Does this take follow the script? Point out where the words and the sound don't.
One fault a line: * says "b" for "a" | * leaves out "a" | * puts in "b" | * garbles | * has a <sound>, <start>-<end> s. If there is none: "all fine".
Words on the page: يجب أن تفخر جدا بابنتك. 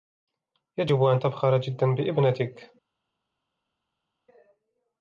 all fine